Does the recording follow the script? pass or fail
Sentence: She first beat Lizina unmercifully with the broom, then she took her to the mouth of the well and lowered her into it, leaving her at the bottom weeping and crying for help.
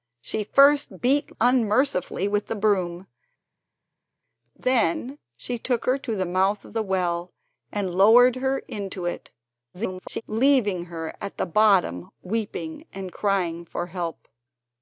fail